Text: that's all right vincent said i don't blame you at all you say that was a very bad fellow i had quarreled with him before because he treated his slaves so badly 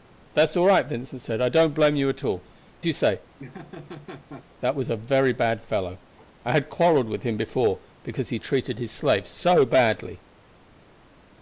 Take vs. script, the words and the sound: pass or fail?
fail